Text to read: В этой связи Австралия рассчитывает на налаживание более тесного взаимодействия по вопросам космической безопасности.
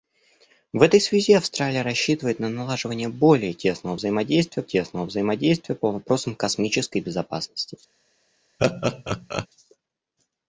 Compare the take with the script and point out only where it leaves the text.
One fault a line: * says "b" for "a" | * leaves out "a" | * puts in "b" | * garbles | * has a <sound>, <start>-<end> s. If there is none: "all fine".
* puts in "тесного взаимодействия"
* has a laugh, 8.6-9.5 s